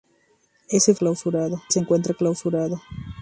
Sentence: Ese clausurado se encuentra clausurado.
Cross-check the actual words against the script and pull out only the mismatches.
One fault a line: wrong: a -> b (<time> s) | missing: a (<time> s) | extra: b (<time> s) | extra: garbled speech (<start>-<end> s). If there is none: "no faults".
no faults